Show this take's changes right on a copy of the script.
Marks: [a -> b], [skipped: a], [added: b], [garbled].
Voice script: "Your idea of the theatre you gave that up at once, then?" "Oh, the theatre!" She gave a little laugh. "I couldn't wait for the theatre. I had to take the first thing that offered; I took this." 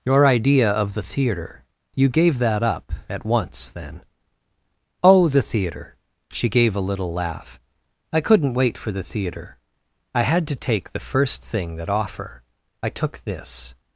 "Your idea of the theatre you gave that up at once, then?" "Oh, the theatre!" She gave a little laugh. "I couldn't wait for the theatre. I had to take the first thing that [offered; -> offer] I took this."